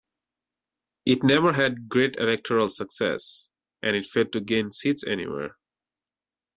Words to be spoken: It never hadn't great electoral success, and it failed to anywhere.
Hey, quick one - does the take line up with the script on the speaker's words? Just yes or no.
no